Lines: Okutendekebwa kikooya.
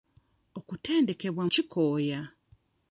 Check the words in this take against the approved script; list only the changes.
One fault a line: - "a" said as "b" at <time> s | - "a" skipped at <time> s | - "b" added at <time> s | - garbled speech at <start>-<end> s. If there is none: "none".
none